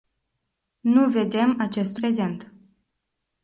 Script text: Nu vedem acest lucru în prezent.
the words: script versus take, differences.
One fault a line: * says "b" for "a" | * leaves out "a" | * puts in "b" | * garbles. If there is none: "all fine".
* leaves out "lucru în"